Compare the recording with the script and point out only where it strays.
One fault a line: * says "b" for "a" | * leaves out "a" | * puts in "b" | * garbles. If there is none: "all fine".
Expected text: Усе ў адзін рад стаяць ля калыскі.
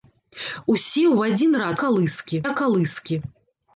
* says "калыскі" for "стаяць"